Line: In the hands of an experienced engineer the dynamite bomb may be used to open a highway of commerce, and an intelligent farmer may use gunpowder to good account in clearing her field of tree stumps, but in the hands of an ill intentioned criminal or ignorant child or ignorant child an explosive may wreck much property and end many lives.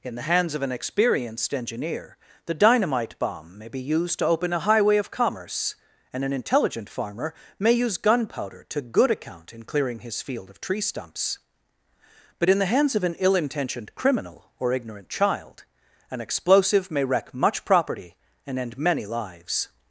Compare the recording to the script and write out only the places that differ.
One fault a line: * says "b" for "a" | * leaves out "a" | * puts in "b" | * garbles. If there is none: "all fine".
* says "his" for "her"
* leaves out "or ignorant child"